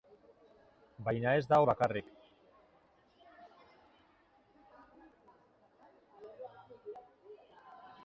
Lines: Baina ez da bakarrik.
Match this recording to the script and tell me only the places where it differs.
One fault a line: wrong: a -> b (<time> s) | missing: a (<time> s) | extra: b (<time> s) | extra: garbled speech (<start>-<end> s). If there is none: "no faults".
no faults